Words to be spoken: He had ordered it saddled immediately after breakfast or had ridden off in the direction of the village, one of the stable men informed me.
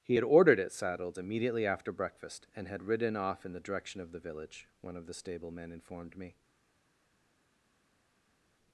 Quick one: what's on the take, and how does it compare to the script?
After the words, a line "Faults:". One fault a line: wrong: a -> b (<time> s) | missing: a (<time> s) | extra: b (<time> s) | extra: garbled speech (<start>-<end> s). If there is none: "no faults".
He had ordered it saddled immediately after breakfast and had ridden off in the direction of the village, one of the stable men informed me.
Faults:
wrong: or -> and (2.6 s)